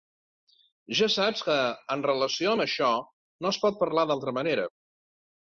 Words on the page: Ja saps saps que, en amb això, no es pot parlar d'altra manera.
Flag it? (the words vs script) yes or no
yes